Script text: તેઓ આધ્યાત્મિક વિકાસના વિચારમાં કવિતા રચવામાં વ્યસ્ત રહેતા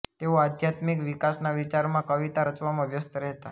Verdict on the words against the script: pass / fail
pass